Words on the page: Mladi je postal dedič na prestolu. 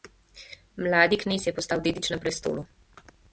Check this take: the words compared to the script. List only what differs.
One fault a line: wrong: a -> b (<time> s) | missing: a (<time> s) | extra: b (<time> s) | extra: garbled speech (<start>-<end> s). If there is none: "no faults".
extra: knez (1.2 s)